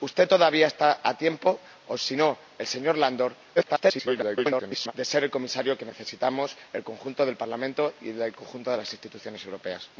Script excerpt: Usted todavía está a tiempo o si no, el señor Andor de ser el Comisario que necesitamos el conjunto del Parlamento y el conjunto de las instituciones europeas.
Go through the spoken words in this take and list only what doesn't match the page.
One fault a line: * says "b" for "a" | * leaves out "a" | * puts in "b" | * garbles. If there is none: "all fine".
* garbles